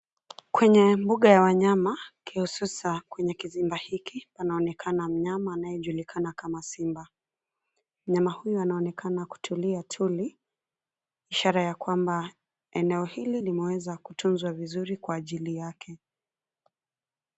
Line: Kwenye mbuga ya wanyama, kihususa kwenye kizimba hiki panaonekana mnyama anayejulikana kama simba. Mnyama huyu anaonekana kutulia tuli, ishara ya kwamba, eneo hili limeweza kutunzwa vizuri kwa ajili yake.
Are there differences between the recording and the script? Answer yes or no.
no